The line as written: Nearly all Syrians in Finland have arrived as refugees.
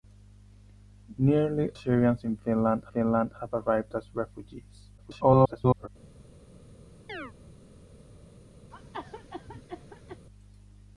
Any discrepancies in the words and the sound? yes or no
yes